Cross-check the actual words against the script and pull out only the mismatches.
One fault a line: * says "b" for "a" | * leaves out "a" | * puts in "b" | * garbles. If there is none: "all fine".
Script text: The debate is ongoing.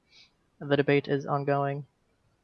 all fine